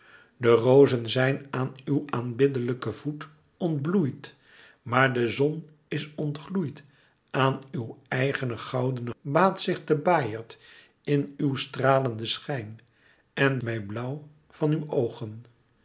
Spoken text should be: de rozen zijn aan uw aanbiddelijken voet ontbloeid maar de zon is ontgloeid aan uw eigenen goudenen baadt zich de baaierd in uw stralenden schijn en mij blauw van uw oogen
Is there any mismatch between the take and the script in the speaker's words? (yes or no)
no